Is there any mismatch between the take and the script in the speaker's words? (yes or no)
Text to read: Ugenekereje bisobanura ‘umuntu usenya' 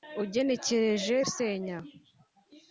yes